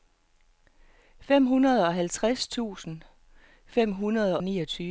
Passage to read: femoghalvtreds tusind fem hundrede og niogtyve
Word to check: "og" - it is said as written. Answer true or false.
false